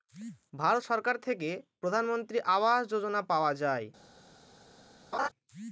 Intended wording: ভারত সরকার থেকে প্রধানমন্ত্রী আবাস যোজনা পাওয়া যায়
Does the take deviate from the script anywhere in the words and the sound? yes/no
yes